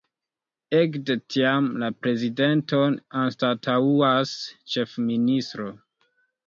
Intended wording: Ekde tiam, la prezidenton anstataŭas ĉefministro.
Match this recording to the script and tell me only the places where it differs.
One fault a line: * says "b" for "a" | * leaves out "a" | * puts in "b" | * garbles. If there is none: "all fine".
all fine